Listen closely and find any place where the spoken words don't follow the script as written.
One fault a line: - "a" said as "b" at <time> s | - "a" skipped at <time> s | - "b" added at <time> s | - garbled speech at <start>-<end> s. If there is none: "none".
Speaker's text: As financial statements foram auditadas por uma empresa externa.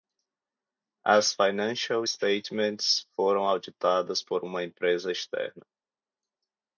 none